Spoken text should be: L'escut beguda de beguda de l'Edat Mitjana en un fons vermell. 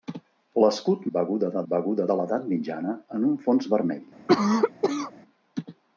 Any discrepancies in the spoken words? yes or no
no